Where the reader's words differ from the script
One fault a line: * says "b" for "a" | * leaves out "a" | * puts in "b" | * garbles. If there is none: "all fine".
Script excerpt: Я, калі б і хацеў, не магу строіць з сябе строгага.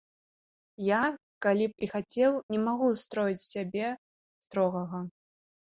all fine